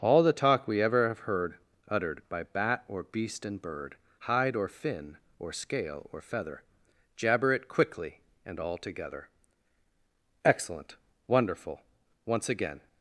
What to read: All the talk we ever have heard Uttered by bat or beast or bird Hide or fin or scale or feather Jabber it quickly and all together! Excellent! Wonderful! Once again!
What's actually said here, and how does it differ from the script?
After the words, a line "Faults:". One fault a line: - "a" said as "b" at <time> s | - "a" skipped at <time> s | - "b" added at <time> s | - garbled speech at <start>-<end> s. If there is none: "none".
All the talk we ever have heard Uttered by bat or beast and bird Hide or fin or scale or feather Jabber it quickly and all together! Excellent! Wonderful! Once again!
Faults:
- "or" said as "and" at 3.5 s